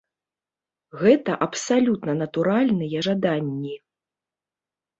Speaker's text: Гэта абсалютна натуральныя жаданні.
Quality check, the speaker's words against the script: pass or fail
pass